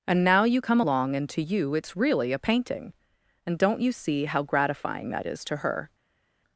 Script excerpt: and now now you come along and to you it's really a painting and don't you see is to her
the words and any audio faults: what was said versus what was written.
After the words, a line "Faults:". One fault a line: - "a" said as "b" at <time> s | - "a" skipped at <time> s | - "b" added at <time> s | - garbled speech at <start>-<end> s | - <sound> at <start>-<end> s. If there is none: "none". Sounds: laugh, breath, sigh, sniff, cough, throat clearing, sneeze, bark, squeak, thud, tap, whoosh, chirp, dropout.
and now you come along and to you it's really a painting and don't you see how gratifying that is to her
Faults:
- "now" skipped at 0.4 s
- "how gratifying that" added at 4.2 s